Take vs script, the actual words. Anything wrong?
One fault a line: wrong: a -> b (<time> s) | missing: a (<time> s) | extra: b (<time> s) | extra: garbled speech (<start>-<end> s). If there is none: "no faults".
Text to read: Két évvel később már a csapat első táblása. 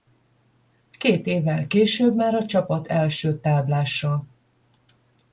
no faults